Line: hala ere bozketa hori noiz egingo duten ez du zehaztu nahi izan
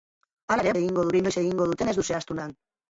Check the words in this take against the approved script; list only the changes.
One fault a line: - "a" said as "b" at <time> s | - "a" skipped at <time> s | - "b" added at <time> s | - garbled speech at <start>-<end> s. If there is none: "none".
- "bozketa" said as "egingo" at 0.8 s
- "nahi" skipped at 2.4 s